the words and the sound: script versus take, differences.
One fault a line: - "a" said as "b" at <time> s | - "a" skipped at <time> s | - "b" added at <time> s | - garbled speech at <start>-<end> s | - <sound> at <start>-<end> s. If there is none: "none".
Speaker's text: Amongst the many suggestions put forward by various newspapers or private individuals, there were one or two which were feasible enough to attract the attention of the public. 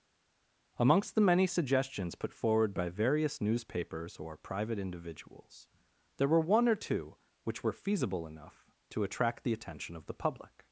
none